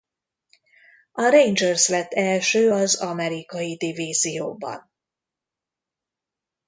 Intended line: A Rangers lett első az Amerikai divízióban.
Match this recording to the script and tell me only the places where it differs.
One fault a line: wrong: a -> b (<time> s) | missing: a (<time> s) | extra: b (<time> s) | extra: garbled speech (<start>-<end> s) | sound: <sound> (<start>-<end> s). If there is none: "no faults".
no faults